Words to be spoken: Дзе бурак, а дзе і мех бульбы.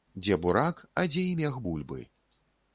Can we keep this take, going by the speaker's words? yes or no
yes